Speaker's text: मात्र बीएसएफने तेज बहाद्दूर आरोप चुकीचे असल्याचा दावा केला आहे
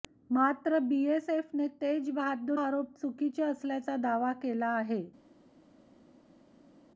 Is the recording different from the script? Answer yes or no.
no